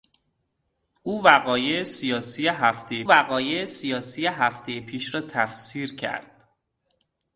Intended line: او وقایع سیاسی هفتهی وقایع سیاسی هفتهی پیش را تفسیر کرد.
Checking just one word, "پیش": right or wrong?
right